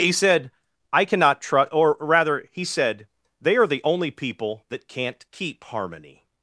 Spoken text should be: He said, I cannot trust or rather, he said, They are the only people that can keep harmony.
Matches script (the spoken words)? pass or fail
fail